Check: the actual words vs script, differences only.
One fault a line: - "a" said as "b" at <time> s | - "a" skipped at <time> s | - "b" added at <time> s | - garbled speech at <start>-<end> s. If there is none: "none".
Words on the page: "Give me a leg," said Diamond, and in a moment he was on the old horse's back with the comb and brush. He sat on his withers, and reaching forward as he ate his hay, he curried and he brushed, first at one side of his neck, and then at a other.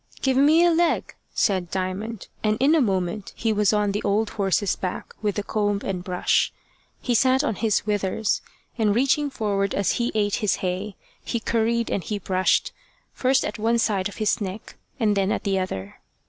- "a" said as "the" at 15.4 s